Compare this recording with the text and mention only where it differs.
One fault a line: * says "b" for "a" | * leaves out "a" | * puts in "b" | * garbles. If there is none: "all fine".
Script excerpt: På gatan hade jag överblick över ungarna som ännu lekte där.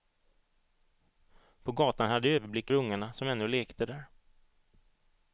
* leaves out "över"